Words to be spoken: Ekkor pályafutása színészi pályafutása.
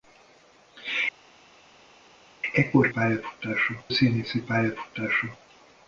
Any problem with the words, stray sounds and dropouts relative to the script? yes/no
no